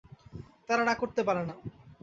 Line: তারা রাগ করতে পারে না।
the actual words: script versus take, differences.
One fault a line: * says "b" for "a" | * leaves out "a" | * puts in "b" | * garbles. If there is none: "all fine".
all fine